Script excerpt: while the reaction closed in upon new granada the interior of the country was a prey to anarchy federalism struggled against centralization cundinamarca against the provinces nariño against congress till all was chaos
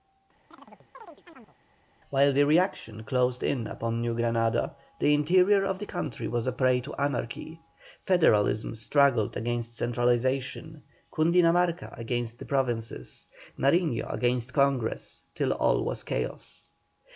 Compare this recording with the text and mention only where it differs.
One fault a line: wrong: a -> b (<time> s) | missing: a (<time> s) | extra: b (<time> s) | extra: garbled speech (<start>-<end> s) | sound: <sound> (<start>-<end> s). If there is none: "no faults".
sound: chirp (0.5-1.6 s)